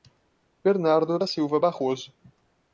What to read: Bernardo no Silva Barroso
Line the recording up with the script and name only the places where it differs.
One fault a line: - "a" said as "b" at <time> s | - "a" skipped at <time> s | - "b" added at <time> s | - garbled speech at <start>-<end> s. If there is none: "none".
- "no" said as "da" at 1.2 s